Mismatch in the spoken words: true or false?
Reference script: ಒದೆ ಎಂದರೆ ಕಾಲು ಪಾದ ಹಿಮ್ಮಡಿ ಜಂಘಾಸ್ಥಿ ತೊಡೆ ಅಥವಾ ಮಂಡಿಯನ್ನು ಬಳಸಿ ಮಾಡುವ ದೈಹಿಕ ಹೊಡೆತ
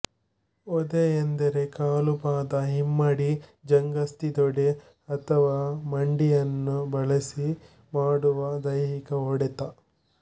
false